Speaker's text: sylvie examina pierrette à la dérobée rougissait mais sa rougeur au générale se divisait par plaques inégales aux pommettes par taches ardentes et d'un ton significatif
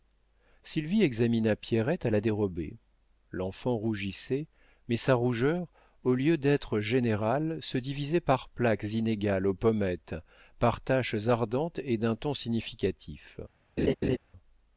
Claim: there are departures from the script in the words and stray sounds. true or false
true